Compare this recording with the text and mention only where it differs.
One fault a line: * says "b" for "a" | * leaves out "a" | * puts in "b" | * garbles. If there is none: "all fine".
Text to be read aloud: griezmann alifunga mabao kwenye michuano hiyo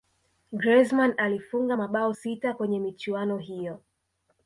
* puts in "sita"